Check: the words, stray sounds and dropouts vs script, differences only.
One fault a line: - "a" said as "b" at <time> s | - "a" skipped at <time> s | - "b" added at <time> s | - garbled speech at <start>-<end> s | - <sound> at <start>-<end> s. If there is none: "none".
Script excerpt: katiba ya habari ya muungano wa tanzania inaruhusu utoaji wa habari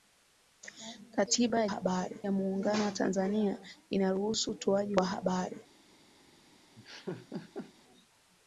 - laugh at 6.8-7.7 s